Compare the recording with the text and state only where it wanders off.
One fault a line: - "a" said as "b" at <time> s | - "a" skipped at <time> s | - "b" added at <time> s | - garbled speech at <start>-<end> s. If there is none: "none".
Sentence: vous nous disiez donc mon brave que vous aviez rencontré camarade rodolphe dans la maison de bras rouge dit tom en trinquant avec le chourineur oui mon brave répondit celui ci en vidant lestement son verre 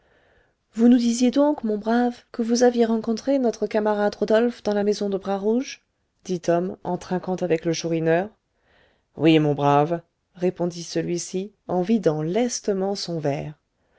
- "notre" added at 3.4 s